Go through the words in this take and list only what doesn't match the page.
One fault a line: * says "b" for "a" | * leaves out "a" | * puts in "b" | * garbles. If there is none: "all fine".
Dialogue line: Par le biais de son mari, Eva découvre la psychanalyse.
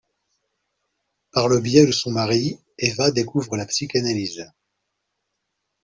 all fine